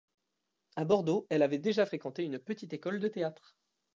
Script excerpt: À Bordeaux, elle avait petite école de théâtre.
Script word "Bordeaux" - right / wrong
right